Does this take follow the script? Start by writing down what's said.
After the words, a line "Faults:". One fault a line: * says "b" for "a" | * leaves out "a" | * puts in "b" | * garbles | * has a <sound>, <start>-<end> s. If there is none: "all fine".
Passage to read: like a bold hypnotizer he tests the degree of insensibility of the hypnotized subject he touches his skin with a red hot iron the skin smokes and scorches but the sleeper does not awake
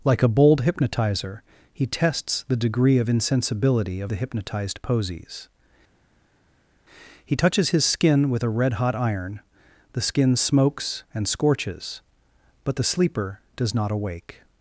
like a bold hypnotizer he tests the degree of insensibility of the hypnotized posies he touches his skin with a red hot iron the skin smokes and scorches but the sleeper does not awake
Faults:
* says "posies" for "subject"